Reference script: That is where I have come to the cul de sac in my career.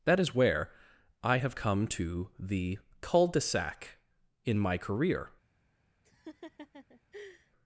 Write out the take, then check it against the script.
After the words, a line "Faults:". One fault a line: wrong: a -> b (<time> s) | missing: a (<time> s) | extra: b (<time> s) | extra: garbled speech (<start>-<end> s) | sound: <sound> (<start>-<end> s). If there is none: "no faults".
That is where I have come to the cul de sac in my career.
Faults:
sound: laugh (6.0-7.5 s)